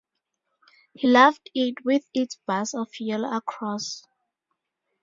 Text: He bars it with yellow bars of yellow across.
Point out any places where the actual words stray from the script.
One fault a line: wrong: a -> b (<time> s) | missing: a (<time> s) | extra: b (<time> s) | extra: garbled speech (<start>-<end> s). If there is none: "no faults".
wrong: bars -> loved (1.0 s)
wrong: yellow -> its (2.1 s)